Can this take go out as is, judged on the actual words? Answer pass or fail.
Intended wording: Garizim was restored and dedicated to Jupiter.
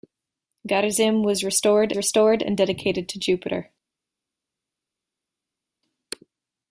fail